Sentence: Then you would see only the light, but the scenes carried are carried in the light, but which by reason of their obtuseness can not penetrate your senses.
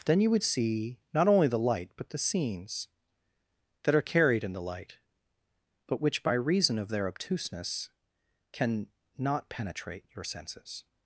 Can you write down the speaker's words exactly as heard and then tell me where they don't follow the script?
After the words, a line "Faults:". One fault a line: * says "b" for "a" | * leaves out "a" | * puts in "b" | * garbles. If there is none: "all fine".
Then you would see not only the light, but the scenes that are carried in the light, but which by reason of their obtuseness can not penetrate your senses.
Faults:
* puts in "not"
* says "that" for "carried"